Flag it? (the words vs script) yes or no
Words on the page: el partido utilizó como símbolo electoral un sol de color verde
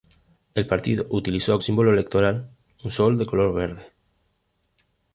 yes